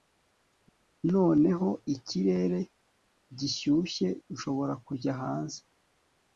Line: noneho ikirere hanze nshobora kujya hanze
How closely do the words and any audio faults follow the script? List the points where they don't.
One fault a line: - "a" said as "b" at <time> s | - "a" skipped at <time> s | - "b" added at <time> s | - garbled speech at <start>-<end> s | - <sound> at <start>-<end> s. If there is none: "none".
- "hanze" said as "gishyushye" at 3.4 s